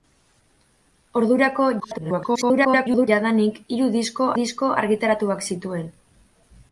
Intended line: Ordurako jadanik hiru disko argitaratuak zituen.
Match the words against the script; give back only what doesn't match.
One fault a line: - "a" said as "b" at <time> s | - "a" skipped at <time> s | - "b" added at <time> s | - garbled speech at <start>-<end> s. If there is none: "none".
- garbled speech at 1.8-3.1 s
- "disko" added at 4.4 s